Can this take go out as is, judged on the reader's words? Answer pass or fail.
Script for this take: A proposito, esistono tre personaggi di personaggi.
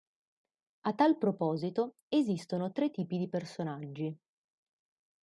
fail